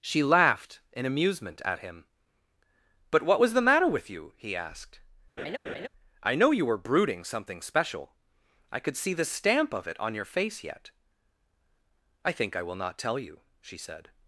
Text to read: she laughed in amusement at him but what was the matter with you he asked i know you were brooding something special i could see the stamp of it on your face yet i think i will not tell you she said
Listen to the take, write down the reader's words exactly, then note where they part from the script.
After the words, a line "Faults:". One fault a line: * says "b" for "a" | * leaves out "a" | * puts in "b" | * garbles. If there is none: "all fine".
she laughed in amusement at him but what was the matter with you he asked i know you were brooding something special i could see the stamp of it on your face yet i think i will not tell you she said
Faults:
all fine